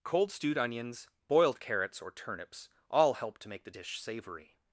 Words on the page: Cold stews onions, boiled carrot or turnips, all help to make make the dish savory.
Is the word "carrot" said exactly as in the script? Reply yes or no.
no